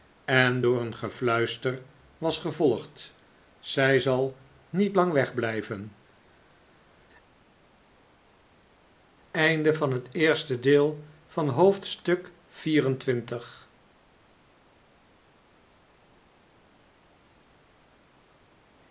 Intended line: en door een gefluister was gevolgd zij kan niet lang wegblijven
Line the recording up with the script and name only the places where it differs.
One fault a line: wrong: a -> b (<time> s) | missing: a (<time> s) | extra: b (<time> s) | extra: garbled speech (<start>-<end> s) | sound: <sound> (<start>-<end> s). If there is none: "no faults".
wrong: kan -> zal (4.0 s)